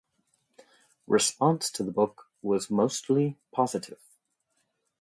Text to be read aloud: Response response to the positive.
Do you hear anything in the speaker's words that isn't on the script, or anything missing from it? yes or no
yes